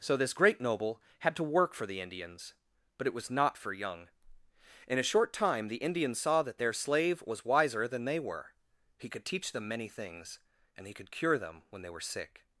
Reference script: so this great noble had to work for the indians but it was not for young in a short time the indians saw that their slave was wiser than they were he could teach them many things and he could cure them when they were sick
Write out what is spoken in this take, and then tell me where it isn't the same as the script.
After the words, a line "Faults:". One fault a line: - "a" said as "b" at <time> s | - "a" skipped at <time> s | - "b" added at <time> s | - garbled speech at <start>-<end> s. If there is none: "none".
so this great noble had to work for the indians but it was not for young in a short time the indians saw that their slave was wiser than they were he could teach them many things and he could cure them when they were sick
Faults:
none